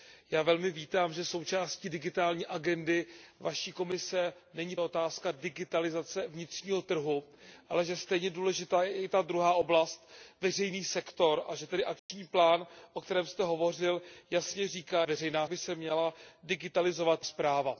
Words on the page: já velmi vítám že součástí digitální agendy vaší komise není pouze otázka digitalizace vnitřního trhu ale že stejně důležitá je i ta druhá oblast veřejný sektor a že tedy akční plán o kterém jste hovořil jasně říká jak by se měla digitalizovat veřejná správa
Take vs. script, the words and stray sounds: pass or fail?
fail